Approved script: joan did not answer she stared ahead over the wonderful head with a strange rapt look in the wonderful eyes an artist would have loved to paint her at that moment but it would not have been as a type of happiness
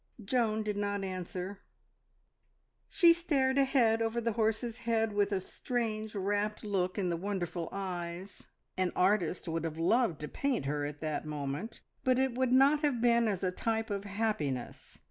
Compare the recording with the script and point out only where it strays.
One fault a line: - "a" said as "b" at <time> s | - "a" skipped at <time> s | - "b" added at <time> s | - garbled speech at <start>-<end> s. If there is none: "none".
- "wonderful" said as "horse's" at 4.3 s